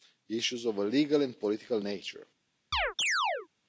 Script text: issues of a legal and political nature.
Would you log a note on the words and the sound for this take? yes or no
yes